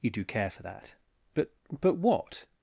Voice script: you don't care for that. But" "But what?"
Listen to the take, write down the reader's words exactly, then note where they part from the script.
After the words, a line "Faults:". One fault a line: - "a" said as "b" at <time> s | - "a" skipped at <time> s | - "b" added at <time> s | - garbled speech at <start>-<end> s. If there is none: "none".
you do care for that. But" "But what?"
Faults:
- "don't" said as "do" at 0.1 s